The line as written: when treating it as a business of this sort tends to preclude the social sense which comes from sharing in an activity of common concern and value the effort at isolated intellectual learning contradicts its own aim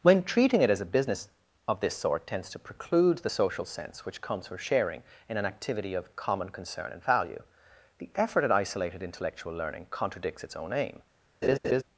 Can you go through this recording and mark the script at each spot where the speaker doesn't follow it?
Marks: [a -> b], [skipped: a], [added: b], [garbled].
when treating it as a business of this sort tends to preclude the social sense which comes from sharing in an activity of common concern and value the effort at isolated intellectual learning contradicts its own aim